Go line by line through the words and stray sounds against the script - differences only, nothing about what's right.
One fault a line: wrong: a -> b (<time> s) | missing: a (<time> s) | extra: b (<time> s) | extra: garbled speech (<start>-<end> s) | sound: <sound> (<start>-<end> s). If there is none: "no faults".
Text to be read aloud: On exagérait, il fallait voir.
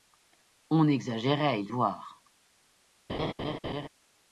missing: fallait (1.7 s)
sound: laugh (3.1-3.9 s)